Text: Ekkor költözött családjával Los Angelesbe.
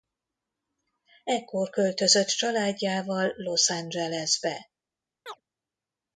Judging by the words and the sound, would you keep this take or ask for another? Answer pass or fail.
fail